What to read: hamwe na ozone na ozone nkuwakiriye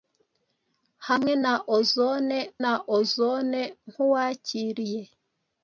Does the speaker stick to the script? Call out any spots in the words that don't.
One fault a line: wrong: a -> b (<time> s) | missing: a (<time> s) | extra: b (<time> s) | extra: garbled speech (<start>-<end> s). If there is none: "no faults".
no faults